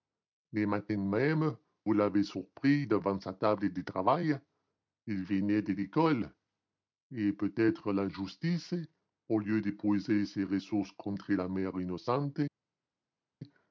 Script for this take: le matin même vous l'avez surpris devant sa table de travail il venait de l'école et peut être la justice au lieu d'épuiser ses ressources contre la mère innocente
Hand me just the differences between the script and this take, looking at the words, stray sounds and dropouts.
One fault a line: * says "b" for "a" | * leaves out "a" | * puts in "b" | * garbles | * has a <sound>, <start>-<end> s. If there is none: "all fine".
all fine